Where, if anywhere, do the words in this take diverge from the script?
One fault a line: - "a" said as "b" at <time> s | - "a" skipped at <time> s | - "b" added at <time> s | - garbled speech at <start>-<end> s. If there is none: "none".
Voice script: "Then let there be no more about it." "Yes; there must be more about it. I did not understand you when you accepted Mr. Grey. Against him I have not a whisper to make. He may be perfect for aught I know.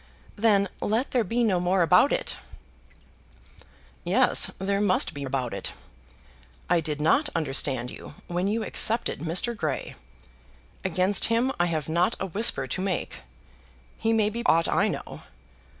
- "more" skipped at 5.3 s
- "perfect for" skipped at 14.4 s